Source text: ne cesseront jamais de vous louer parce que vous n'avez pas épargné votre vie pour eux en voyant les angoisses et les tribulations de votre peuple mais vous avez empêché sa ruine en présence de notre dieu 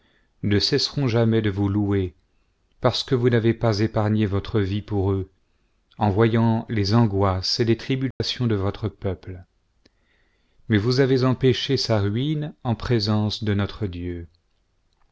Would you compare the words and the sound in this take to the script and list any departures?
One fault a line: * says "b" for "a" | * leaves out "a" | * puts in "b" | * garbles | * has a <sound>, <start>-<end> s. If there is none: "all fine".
* has a dropout, 8.1-8.2 s